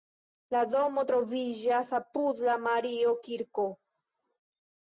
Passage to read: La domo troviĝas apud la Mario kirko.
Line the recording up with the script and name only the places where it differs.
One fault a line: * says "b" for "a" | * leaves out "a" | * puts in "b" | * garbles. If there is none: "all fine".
all fine